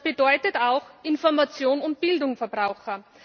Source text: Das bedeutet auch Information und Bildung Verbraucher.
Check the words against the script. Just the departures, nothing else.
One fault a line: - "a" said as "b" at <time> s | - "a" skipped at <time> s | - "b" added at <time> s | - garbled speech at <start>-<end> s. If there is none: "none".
none